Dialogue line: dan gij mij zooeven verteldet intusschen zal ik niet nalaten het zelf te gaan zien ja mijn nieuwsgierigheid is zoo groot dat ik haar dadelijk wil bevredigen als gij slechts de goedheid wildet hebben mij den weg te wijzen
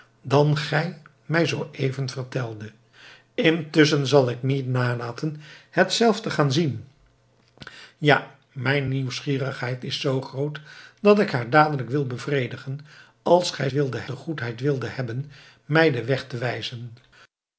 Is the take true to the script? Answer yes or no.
no